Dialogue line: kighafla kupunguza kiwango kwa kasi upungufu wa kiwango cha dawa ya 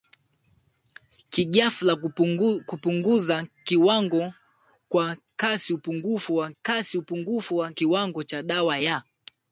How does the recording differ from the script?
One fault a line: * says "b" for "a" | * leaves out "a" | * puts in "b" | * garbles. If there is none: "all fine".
* puts in "kasi upungufu wa"